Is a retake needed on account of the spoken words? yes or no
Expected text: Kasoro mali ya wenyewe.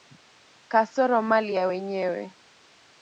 no